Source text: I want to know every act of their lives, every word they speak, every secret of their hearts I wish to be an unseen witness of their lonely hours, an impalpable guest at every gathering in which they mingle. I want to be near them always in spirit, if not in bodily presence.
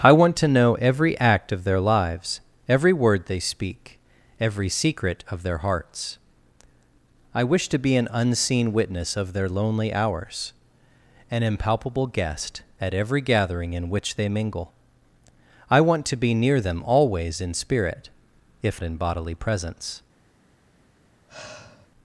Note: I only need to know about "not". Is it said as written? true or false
false